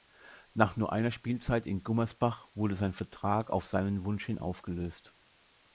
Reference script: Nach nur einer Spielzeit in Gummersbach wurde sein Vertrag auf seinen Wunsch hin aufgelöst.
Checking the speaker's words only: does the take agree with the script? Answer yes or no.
yes